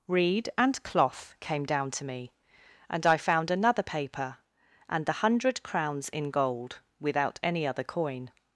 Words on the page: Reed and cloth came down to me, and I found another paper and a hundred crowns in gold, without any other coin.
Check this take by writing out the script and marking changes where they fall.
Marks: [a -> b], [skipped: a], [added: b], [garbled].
Reed and cloth came down to me, and I found another paper and [a -> the] hundred crowns in gold, without any other coin.